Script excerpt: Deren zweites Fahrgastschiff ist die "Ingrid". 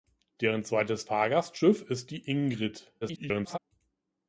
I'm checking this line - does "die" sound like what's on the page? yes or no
yes